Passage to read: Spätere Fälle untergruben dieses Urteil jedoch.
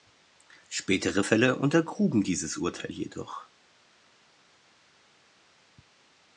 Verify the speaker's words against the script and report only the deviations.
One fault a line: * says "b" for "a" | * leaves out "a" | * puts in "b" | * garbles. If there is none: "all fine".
all fine